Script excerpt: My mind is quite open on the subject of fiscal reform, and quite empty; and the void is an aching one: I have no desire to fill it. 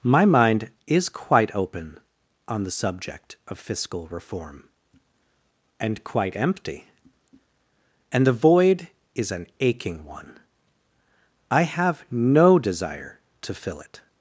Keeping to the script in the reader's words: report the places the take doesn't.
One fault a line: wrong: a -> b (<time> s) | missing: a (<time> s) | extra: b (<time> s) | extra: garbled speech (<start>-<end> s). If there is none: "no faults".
no faults